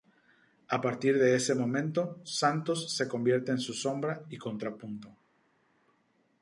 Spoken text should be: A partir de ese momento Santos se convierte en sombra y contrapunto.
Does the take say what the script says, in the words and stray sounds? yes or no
no